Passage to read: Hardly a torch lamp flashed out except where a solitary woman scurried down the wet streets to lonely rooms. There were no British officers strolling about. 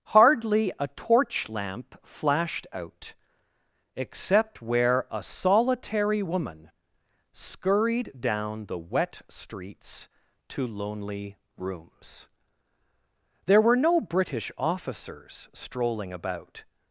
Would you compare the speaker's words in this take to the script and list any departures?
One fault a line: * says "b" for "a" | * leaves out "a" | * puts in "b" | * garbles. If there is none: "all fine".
all fine